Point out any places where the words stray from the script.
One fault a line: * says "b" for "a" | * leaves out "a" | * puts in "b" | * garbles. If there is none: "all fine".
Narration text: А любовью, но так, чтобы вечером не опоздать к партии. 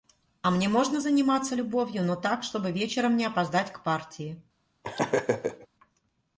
* puts in "мне можно заниматься"